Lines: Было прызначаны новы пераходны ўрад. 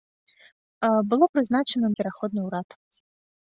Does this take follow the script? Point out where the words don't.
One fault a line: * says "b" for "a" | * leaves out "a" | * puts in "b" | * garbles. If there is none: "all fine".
* leaves out "новы"